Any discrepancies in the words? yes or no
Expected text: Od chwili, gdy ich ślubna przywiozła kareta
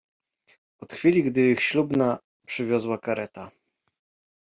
no